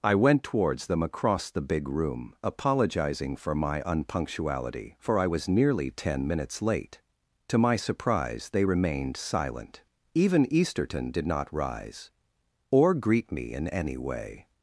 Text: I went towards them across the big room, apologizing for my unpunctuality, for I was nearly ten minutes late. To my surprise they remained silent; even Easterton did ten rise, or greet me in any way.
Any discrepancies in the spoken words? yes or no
yes